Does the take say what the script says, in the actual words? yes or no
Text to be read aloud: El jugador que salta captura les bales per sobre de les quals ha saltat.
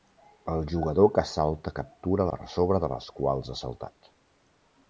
no